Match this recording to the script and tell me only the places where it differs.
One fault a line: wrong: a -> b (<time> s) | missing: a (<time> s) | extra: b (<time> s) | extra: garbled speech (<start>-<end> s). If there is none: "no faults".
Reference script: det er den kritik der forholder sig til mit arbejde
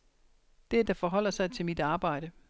missing: den kritik (0.8 s)